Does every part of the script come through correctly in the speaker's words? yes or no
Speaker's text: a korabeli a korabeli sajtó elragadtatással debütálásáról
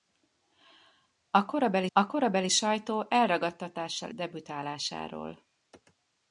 yes